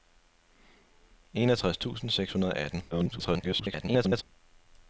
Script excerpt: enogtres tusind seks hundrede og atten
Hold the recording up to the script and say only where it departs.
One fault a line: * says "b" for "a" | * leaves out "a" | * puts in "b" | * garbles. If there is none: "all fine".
* garbles